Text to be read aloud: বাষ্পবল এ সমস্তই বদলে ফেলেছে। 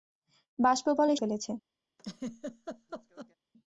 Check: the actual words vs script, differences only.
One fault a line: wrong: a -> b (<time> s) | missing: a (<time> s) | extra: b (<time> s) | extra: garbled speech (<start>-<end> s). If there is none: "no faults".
missing: সমস্তই বদলে (1.2 s)